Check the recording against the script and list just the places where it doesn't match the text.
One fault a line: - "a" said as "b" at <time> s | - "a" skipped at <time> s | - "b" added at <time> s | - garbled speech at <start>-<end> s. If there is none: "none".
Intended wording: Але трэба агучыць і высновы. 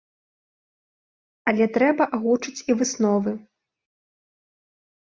none